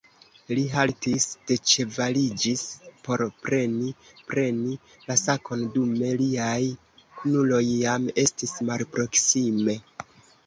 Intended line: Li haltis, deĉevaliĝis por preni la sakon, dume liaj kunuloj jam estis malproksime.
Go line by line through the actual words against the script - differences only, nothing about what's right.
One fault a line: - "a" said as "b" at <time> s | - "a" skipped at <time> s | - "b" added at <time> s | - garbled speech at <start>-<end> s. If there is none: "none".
- "preni" added at 4.3 s